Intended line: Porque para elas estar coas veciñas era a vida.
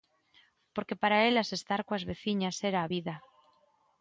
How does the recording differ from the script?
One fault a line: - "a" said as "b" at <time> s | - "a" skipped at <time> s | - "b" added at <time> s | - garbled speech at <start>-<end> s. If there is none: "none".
none